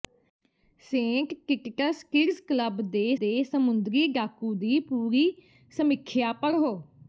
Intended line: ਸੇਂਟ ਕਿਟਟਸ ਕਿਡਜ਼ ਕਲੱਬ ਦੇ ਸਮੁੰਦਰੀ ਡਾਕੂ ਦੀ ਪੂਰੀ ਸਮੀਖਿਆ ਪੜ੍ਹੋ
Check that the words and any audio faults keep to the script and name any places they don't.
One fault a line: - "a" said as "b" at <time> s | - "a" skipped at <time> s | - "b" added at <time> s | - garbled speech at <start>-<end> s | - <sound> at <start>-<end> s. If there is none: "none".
- "ਦੇ" added at 3.2 s